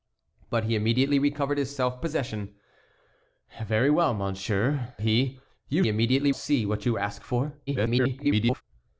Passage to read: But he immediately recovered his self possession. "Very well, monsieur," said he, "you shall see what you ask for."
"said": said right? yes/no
no